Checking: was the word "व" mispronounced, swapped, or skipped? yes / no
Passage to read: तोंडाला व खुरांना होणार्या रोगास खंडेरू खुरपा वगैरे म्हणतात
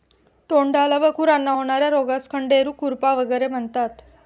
no